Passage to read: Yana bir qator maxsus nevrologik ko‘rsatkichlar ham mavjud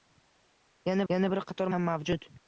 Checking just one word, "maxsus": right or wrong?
wrong